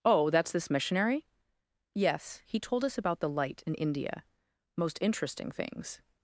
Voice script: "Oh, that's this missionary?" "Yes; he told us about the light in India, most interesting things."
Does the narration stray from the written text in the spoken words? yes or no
no